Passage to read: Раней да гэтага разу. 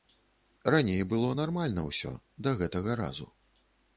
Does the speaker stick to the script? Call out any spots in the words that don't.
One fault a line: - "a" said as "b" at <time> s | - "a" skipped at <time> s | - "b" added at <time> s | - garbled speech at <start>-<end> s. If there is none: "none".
- "было нармальна ўсё" added at 1.1 s